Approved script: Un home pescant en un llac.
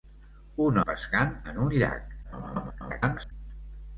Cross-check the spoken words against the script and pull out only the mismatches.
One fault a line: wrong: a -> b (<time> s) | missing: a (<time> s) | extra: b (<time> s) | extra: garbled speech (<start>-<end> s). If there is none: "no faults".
missing: home (0.8 s)
extra: garbled speech (2.2-3.3 s)